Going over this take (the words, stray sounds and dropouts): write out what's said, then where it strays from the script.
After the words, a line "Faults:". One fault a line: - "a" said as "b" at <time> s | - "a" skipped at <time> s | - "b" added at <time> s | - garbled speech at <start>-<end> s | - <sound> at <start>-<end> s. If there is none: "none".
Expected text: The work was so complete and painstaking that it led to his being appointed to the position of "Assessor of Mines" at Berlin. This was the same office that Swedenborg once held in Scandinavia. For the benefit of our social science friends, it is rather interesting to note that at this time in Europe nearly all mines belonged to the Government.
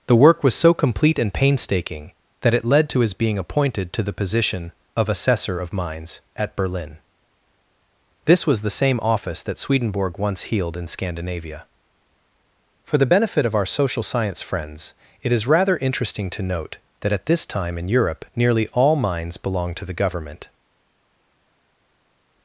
The work was so complete and painstaking that it led to his being appointed to the position of "Assessor of Mines" at Berlin. This was the same office that Swedenborg once healed in Scandinavia. For the benefit of our social science friends, it is rather interesting to note that at this time in Europe nearly all mines belonged to the Government.
Faults:
- "held" said as "healed" at 10.5 s